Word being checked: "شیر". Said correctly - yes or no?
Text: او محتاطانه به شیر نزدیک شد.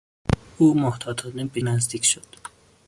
no